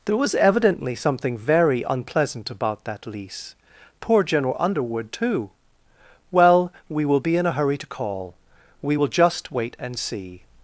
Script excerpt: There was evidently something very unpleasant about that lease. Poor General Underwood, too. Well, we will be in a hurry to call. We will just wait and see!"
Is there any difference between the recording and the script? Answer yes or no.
no